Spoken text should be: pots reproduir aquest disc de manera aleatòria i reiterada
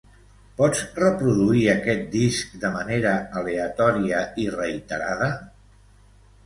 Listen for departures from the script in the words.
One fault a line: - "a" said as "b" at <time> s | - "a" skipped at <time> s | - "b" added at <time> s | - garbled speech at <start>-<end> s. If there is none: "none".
none